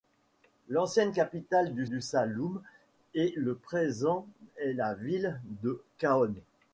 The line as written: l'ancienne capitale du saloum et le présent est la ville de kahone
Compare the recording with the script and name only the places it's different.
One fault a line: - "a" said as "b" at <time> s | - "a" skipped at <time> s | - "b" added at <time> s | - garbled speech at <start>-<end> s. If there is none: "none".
- "du" added at 1.9 s